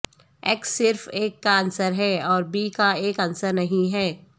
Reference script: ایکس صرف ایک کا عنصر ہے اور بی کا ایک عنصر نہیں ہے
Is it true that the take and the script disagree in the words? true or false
false